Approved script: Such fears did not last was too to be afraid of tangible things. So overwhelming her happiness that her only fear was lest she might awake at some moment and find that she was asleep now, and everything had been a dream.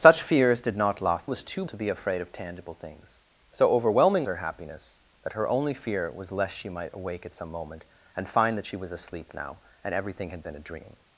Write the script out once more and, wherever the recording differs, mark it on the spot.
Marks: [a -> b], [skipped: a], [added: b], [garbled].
Such fears did not last was too to be afraid of tangible things. So overwhelming her happiness that her only fear was lest she might awake at some moment and find that she was asleep now, and everything had been a dream.